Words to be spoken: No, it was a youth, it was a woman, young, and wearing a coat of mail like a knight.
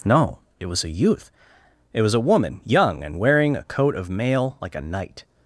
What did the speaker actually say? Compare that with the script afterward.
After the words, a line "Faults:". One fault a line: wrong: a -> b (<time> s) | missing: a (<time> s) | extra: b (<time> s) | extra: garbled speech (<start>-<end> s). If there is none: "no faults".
No, it was a youth, it was a woman, young, and wearing a coat of mail like a knight.
Faults:
no faults